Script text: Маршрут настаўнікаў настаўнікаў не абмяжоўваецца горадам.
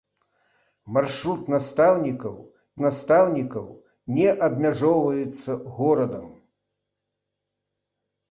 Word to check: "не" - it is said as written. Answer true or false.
true